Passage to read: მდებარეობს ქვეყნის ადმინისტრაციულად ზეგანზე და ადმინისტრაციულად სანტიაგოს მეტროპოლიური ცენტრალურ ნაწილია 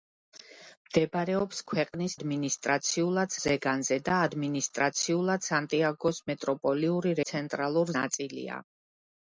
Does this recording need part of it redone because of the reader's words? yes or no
no